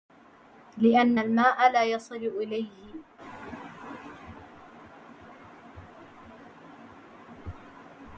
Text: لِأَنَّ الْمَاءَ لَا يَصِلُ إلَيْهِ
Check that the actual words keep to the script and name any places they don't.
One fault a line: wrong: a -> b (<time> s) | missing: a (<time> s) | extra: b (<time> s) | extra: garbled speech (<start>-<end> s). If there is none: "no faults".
no faults